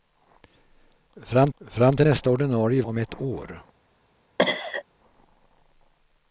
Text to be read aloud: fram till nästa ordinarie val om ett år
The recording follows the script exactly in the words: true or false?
false